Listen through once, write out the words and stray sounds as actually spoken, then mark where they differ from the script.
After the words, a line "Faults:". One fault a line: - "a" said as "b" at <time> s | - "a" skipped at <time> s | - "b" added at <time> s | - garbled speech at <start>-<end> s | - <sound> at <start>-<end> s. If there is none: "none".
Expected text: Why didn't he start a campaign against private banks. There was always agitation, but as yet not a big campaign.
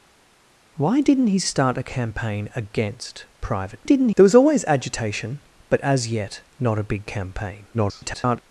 Why didn't he start a campaign against private didn't. There was always agitation, but as yet not a big campaign. [garbled]
Faults:
- "banks" said as "didn't" at 3.8 s
- garbled speech at 7.7-8.4 s